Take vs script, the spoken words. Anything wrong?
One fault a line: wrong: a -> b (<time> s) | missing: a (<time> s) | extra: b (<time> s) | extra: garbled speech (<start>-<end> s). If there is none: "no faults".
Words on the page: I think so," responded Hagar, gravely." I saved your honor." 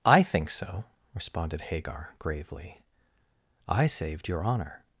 no faults